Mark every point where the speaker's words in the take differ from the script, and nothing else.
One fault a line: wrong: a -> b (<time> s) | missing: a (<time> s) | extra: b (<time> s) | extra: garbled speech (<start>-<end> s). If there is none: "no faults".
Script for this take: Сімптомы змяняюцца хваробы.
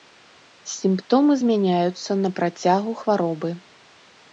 extra: на працягу (2.2 s)